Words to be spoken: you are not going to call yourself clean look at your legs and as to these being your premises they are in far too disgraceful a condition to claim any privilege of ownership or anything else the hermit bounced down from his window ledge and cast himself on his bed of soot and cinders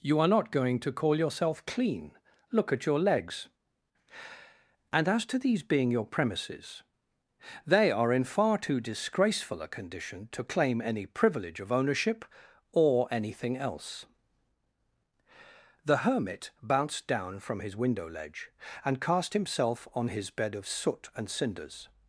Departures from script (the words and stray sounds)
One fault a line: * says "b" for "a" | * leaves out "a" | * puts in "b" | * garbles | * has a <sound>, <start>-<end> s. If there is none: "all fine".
all fine